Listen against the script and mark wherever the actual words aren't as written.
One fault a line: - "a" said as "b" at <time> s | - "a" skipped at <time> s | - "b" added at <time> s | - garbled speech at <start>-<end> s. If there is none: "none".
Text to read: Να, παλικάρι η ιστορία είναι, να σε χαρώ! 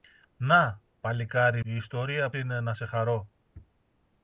none